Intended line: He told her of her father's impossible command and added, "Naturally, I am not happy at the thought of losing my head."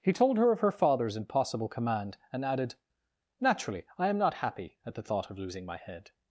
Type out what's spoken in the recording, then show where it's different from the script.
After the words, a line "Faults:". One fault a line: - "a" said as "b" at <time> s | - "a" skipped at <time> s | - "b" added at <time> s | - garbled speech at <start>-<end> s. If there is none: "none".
He told her of her father's impossible command and added, "Naturally, I am not happy at the thought of losing my head."
Faults:
none